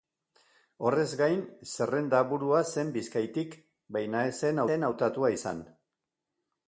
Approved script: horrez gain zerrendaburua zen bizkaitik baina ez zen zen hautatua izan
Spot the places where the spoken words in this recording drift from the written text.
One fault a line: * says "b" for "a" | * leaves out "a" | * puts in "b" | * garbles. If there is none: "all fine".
all fine